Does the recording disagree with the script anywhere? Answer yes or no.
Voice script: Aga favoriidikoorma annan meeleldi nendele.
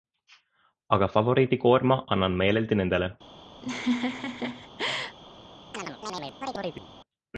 no